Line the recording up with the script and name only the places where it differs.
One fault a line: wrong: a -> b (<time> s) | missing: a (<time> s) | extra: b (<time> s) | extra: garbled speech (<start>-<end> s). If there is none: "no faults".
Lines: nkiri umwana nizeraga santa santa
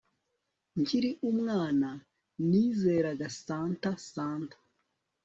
no faults